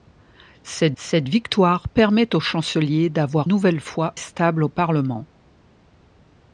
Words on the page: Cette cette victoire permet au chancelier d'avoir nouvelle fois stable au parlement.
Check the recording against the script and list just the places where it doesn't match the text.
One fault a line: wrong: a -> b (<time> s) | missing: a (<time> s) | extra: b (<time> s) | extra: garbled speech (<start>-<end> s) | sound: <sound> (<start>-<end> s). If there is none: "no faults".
no faults